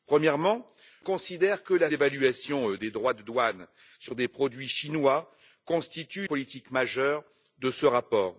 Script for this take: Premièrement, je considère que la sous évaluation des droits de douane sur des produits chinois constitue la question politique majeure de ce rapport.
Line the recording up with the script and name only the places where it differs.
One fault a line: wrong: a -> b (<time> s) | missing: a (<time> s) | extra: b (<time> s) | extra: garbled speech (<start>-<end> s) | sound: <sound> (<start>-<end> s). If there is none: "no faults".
missing: je (0.7 s)
missing: sous (1.9 s)
missing: la question (6.3 s)